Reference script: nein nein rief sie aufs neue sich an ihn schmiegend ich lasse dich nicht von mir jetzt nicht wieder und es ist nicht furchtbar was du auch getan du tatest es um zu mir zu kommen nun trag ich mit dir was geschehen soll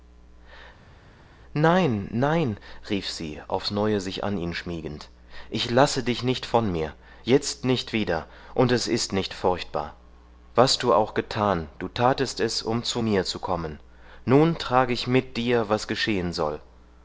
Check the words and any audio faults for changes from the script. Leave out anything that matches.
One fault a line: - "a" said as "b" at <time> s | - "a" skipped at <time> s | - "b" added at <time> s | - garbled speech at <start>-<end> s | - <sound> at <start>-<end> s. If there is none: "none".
none